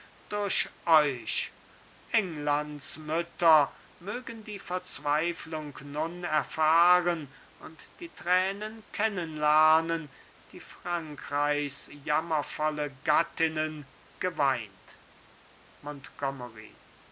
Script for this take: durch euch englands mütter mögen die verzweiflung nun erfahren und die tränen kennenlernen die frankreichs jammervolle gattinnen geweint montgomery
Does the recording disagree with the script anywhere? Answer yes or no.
no